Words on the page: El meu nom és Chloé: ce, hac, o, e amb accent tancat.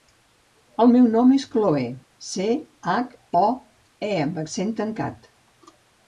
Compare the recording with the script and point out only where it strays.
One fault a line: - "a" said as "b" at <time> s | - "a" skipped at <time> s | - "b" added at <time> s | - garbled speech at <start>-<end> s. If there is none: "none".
none